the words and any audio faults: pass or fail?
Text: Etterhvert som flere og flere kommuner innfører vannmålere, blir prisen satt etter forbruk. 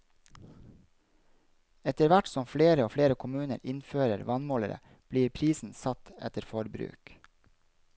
pass